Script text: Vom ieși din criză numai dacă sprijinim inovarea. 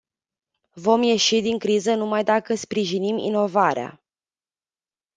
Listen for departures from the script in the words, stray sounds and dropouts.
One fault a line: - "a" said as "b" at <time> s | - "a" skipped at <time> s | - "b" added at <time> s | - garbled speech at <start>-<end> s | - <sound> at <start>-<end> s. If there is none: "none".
none